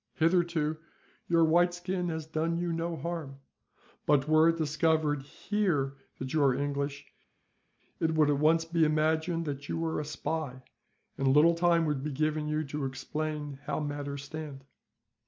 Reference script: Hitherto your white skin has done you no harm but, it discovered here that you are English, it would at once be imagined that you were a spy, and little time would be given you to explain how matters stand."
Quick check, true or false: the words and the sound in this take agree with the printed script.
false